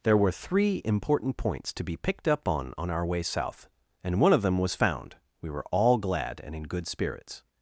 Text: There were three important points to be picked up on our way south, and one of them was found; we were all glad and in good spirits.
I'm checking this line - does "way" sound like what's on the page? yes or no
yes